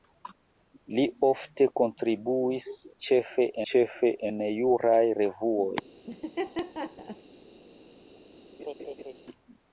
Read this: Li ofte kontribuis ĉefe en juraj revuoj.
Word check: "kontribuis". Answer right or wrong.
right